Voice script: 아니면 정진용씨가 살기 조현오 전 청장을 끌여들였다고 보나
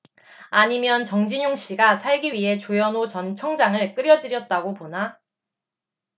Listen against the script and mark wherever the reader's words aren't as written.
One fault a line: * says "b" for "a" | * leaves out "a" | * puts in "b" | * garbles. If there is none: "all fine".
* puts in "위해"